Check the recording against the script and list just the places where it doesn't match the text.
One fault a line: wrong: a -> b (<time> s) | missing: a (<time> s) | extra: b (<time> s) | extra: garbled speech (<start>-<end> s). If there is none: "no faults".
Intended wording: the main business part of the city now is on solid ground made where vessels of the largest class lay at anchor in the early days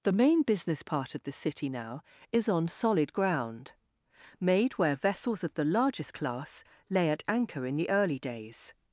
no faults